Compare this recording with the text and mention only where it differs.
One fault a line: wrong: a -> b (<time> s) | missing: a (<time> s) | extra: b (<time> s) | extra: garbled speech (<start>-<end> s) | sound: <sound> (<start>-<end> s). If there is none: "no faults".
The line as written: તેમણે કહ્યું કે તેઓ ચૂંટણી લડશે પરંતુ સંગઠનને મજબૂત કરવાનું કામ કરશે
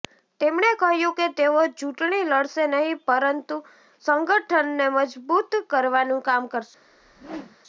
extra: નહીં (2.7 s)
sound: whoosh (6.8-7.6 s)